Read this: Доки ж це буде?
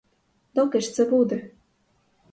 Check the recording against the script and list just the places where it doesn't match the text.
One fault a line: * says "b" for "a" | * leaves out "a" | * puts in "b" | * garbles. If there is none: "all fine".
all fine